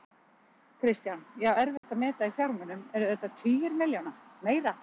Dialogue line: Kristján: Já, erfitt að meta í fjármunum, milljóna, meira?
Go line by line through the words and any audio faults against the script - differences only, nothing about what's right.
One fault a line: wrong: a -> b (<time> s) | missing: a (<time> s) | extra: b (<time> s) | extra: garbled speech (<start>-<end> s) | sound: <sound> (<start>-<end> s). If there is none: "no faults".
sound: dropout (1.8-1.8 s)
extra: eru þetta tugir (3.0 s)